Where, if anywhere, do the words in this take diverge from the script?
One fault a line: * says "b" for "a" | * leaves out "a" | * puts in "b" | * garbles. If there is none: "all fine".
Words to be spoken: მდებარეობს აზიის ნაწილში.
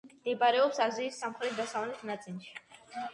* puts in "სამხრეთ დასავლეთ"